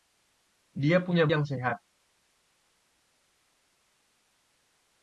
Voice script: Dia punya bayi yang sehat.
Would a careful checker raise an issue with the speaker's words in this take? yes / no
yes